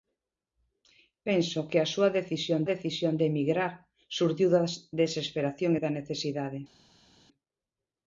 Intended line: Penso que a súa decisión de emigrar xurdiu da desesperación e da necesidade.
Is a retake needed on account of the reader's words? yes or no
yes